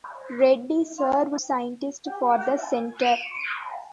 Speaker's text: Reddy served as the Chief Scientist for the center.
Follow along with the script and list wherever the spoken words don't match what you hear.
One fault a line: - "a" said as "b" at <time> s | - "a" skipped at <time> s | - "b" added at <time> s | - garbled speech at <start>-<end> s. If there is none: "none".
- "as the Chief" skipped at 1.4 s